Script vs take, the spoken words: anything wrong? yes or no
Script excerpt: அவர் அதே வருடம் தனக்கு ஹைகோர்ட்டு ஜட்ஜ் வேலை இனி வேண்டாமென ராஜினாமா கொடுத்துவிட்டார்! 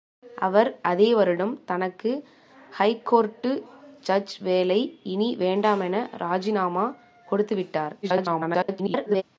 yes